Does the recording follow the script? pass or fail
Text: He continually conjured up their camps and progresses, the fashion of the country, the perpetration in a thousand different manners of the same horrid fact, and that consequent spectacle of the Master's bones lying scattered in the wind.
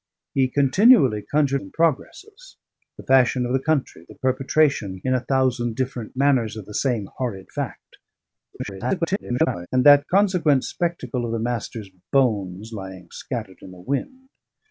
fail